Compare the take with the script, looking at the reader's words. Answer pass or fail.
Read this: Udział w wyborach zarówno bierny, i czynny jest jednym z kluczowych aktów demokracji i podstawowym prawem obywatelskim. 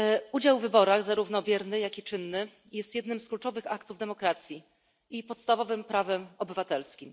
fail